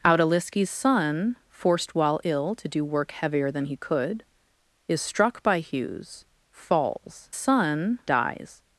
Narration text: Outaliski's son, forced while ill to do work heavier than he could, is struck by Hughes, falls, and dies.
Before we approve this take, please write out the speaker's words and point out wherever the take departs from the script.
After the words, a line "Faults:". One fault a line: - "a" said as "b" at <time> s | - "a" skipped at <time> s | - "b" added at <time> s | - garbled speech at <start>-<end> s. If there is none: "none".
Outaliski's son, forced while ill to do work heavier than he could, is struck by Hughes, falls, son dies.
Faults:
- "and" said as "son" at 7.3 s